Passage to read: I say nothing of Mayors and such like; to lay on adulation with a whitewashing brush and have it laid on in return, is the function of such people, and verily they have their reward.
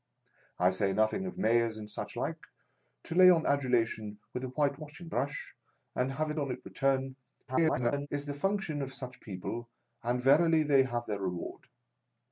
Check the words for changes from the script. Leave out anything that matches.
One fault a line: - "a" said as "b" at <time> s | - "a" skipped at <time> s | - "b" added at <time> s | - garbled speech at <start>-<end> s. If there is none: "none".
- "laid" skipped at 6.4 s
- garbled speech at 7.5-8.1 s